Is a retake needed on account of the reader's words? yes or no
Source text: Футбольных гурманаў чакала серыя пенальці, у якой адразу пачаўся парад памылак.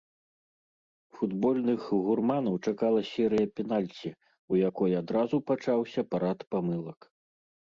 no